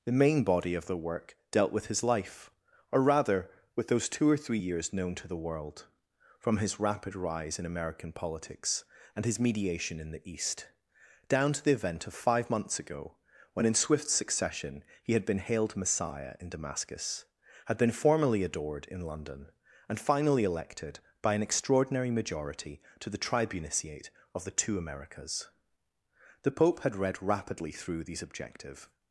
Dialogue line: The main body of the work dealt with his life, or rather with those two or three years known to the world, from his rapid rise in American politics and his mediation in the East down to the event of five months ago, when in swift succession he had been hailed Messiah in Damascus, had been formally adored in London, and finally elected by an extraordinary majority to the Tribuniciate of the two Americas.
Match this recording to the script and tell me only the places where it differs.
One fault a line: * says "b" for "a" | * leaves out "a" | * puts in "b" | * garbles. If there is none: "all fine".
* puts in "The Pope had read rapidly through these objective"